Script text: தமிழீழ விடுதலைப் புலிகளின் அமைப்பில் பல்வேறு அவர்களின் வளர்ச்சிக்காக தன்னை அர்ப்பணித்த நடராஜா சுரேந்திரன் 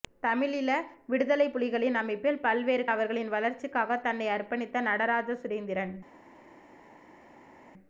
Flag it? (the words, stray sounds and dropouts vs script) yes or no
no